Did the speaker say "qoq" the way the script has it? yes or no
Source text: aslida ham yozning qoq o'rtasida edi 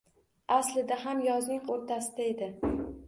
no